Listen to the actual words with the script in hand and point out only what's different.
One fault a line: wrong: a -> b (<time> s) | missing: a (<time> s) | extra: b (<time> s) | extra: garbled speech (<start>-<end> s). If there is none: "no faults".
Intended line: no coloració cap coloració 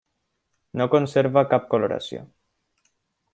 wrong: coloració -> conserva (0.9 s)